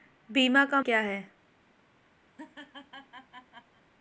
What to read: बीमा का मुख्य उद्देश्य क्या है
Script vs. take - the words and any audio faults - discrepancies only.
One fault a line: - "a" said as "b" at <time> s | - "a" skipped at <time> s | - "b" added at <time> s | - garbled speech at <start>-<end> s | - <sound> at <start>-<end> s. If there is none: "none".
- "मुख्य उद्देश्य" skipped at 0.8 s
- laugh at 2.3-3.8 s